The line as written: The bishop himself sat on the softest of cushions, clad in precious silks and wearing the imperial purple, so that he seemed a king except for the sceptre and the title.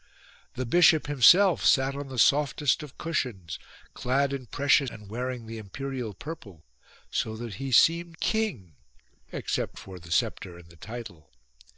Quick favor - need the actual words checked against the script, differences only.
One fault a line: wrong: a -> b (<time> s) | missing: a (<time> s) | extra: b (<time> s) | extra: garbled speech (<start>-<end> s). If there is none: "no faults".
missing: silks (4.9 s)
missing: a (8.2 s)